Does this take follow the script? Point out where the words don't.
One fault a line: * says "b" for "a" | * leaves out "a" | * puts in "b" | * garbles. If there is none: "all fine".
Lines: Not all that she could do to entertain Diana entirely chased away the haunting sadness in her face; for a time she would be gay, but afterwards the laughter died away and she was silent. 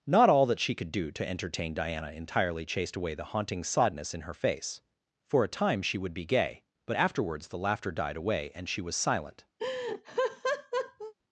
all fine